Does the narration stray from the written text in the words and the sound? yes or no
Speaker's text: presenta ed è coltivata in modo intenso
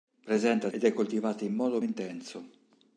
no